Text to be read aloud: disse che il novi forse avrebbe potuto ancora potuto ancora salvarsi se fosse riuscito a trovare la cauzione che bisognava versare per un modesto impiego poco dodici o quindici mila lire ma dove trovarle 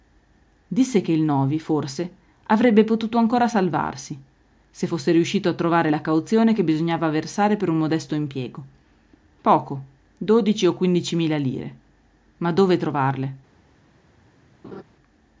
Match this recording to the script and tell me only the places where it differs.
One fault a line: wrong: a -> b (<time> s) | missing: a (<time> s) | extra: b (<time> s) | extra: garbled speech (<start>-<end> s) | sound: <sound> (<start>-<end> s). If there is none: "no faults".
missing: potuto ancora (3.5 s)
sound: laugh (14.6-14.8 s)